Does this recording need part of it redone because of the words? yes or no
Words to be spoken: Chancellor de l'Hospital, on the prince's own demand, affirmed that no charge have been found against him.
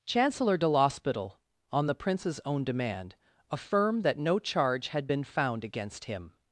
yes